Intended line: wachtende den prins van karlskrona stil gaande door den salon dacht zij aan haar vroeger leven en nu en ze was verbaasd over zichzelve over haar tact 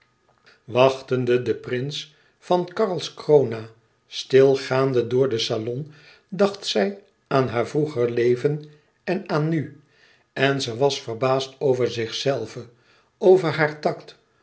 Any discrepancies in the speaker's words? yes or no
yes